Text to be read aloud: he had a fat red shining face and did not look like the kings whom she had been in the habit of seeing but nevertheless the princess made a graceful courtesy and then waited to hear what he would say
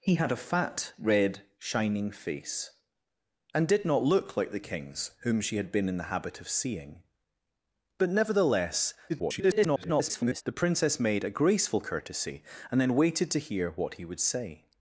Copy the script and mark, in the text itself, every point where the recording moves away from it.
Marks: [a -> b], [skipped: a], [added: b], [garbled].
he had a fat red shining face and did not look like the kings whom she had been in the habit of seeing but nevertheless [garbled] the princess made a graceful courtesy and then waited to hear what he would say